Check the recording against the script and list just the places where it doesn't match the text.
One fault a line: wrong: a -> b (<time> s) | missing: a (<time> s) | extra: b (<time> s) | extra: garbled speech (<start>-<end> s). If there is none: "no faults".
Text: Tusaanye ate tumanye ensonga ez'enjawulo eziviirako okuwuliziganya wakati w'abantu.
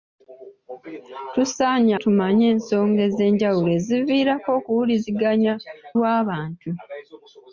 missing: ate (1.9 s)
missing: wakati (5.5 s)